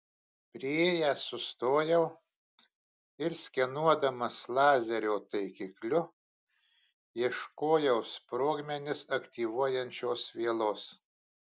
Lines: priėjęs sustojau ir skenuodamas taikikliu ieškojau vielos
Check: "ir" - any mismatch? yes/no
no